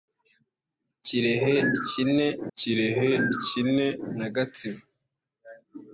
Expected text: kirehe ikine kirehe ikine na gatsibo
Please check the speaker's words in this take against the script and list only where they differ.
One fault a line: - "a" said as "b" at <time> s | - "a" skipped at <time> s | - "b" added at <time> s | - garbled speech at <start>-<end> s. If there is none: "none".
none